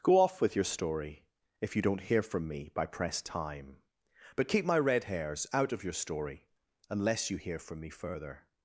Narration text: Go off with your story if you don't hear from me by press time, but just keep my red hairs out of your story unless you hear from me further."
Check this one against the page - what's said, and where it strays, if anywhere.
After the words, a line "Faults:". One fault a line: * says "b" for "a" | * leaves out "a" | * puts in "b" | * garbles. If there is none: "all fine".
Go off with your story if you don't hear from me by press time, but keep my red hairs out of your story unless you hear from me further."
Faults:
* leaves out "just"